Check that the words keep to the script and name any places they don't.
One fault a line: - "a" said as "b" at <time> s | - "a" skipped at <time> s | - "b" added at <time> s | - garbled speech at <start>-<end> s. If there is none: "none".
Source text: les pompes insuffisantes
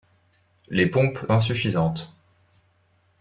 none